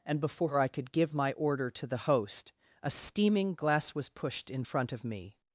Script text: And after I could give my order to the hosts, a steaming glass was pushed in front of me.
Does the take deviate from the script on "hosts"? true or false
true